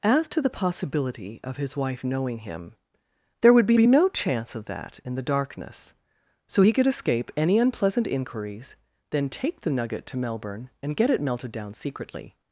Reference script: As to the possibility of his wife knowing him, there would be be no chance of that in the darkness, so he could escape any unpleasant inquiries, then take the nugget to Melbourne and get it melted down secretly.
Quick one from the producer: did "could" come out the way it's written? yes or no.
yes